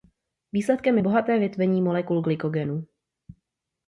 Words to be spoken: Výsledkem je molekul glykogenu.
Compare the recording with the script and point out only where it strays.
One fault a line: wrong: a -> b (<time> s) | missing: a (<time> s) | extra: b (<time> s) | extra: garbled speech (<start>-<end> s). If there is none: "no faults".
extra: bohaté větvení (1.0 s)